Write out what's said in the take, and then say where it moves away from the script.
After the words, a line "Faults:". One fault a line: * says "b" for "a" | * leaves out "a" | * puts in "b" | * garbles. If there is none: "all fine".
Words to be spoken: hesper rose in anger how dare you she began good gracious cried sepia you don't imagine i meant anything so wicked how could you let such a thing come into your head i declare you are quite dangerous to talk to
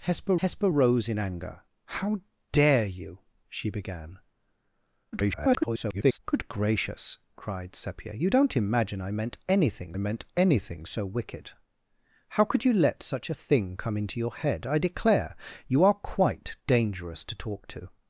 hesper hesper rose in anger how dare you she began [garbled] good gracious cried sepia you don't imagine i meant anything meant anything so wicked how could you let such a thing come into your head i declare you are quite dangerous to talk to
Faults:
* puts in "hesper"
* garbles
* puts in "meant anything"